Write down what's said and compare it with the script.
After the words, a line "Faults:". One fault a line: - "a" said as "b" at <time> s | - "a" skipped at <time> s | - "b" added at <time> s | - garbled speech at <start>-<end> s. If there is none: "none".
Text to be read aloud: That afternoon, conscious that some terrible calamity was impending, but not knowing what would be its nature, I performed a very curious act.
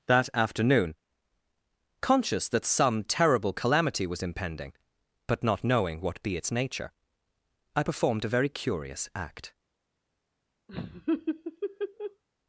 That afternoon, conscious that some terrible calamity was impending, but not knowing what be its nature, I performed a very curious act.
Faults:
- "would" skipped at 6.2 s